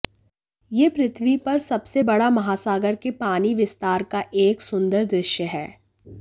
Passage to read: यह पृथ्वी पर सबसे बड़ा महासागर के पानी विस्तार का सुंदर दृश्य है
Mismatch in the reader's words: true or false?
true